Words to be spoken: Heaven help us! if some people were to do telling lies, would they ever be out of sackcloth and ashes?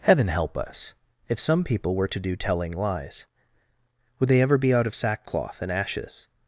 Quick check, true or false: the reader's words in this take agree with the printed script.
true